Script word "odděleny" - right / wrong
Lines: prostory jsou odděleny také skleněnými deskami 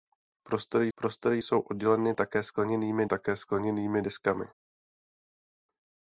right